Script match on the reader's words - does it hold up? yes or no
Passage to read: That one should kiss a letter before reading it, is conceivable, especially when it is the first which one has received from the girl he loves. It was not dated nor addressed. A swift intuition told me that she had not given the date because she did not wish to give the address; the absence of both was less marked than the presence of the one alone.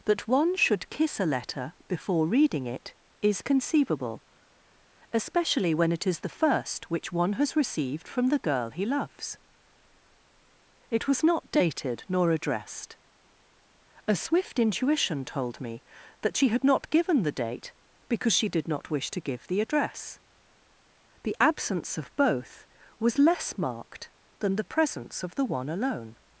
yes